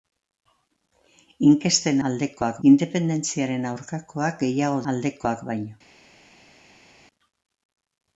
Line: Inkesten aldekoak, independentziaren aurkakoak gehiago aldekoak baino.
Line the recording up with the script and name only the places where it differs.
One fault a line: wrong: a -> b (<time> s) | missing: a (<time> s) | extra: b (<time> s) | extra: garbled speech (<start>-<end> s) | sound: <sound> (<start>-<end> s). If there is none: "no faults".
no faults